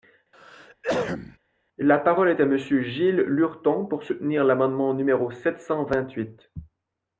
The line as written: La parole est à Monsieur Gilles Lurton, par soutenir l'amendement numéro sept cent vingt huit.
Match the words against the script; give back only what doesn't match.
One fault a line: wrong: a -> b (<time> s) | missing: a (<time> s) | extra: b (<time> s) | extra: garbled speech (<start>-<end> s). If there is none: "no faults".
wrong: par -> pour (3.8 s)